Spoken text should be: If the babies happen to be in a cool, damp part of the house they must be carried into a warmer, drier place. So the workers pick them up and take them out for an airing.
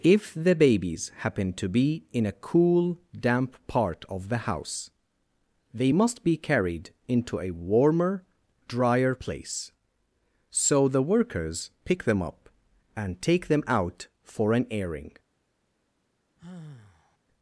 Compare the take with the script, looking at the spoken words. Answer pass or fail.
pass